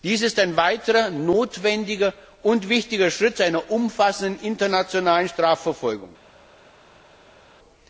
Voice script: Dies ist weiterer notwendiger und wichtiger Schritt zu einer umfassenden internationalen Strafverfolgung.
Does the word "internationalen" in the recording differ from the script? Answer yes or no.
no